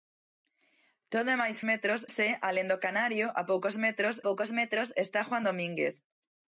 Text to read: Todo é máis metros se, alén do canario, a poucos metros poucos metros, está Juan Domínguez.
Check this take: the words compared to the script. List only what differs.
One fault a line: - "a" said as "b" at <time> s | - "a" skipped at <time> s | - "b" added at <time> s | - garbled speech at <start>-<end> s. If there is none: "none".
none